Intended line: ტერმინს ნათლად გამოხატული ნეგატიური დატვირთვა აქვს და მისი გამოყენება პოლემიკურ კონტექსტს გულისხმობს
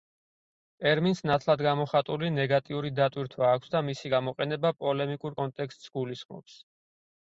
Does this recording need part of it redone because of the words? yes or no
no